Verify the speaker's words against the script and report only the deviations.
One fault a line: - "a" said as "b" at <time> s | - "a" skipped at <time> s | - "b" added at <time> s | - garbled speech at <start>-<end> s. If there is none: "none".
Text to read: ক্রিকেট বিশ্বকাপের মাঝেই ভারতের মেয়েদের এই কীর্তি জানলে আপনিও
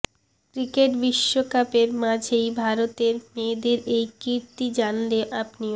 none